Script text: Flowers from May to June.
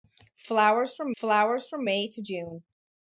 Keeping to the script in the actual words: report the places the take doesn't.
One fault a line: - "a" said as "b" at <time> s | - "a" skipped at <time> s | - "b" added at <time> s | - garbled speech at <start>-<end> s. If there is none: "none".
- "flowers from" added at 1.2 s